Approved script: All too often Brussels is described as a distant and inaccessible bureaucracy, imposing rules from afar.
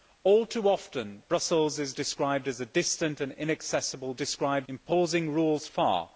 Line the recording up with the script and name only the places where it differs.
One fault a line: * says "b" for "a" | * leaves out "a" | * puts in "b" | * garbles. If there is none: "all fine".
* says "described" for "bureaucracy"
* leaves out "from"